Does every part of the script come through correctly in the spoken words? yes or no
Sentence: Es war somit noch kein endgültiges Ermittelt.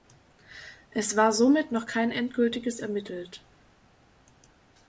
yes